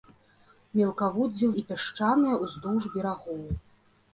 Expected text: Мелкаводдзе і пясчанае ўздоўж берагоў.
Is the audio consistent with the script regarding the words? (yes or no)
yes